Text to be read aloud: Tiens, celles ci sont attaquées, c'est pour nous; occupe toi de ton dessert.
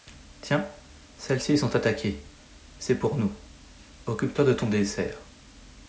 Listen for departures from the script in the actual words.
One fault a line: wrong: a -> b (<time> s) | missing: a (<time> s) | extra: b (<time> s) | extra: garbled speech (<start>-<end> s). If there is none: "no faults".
no faults